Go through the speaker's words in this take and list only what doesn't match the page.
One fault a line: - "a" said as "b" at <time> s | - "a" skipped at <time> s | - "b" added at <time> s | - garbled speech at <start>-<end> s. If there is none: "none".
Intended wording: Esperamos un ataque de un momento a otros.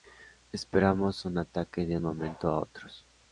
none